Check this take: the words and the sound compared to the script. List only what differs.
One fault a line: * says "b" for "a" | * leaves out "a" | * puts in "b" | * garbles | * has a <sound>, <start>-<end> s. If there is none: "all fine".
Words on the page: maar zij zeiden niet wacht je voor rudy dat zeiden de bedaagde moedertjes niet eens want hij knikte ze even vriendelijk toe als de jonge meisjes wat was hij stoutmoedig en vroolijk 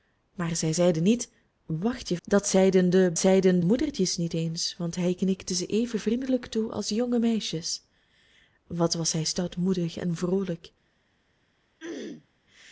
* leaves out "voor rudy"
* says "zeiden" for "bedaagde"
* has a throat clearing, 11.8-12.3 s